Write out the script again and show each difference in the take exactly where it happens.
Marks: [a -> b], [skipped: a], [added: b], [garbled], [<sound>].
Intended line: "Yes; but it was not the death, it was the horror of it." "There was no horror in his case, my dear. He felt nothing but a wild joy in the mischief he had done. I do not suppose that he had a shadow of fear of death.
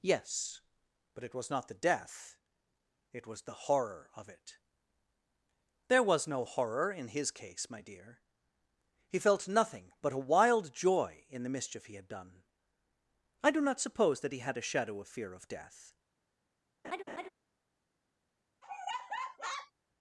"Yes; but it was not the death, it was the horror of it." "There was no horror in his case, my dear. He felt nothing but a wild joy in the mischief he had done. I do not suppose that he had a shadow of fear of death. [laugh] [laugh]